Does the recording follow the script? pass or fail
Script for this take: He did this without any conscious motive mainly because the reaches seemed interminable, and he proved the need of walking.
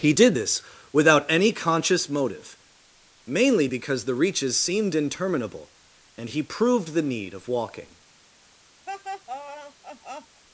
pass